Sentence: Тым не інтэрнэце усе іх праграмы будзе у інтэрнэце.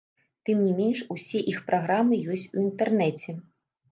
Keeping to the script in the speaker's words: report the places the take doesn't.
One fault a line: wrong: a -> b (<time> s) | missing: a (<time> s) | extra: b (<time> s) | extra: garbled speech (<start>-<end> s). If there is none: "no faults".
wrong: інтэрнэце -> менш (0.8 s)
wrong: будзе -> ёсць (2.3 s)